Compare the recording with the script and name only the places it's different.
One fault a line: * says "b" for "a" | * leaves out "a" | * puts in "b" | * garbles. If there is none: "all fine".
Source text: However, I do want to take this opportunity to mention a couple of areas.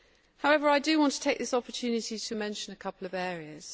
all fine